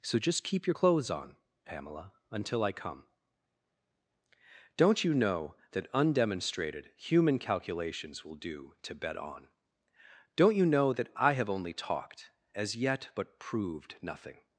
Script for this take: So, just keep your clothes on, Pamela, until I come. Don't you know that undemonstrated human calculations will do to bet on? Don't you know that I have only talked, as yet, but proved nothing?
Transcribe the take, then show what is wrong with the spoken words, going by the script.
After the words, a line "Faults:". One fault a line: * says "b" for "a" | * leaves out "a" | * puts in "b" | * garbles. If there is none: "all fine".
So, just keep your clothes on, Pamela, until I come. Don't you know that undemonstrated human calculations will do to bet on? Don't you know that I have only talked, as yet, but proved nothing?
Faults:
all fine